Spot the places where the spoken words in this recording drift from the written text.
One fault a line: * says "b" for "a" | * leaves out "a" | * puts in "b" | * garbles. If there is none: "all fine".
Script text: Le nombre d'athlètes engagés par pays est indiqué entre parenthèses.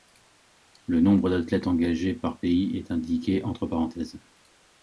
all fine